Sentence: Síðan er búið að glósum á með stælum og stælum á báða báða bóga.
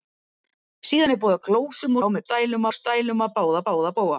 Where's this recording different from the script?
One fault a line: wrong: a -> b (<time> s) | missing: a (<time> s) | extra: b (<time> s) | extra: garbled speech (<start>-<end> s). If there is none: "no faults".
no faults